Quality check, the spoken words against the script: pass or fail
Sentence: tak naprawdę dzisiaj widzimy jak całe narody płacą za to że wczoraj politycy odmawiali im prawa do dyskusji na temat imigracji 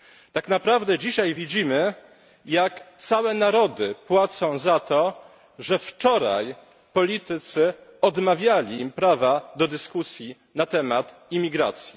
pass